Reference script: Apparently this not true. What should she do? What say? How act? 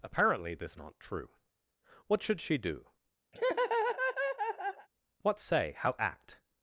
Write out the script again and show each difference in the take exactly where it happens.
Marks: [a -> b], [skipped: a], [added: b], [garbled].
Apparently this not true. What should she do? What say? How act?